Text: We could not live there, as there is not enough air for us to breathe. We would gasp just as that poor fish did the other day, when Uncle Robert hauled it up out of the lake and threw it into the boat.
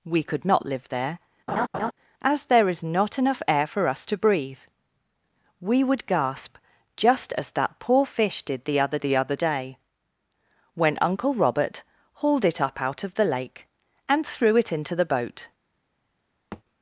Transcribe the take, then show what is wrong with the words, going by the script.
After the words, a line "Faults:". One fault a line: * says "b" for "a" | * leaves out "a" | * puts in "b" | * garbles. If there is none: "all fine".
We could not live there, as there is not enough air for us to breathe. We would gasp just as that poor fish did the other the other day, when Uncle Robert hauled it up out of the lake and threw it into the boat.
Faults:
* puts in "the other"